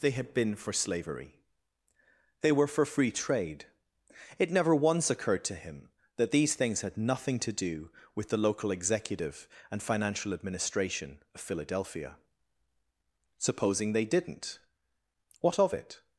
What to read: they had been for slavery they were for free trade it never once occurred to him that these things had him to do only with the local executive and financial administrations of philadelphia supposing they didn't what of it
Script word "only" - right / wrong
wrong